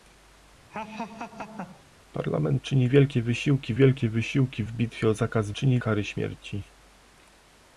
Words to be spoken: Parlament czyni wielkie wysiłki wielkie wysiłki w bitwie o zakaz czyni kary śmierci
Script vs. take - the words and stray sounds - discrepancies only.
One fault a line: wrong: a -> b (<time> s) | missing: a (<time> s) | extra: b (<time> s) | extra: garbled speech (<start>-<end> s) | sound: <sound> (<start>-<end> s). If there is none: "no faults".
sound: laugh (0.7-1.8 s)